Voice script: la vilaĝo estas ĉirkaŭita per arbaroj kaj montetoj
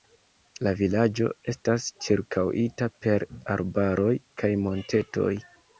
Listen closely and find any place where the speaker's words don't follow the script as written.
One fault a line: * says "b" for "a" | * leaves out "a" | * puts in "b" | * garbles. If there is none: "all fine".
all fine